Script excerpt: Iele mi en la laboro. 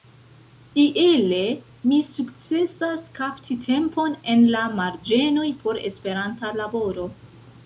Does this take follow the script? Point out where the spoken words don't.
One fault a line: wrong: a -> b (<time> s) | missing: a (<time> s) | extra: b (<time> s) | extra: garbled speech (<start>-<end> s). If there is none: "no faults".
extra: sukcesas kapti tempon (2.1 s)
extra: marĝenoj por Esperanta (4.8 s)